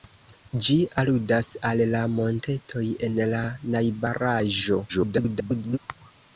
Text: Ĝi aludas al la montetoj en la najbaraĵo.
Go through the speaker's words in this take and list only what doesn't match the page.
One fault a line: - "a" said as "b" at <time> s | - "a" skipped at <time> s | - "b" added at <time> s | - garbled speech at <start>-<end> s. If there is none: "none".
- garbled speech at 4.9-5.8 s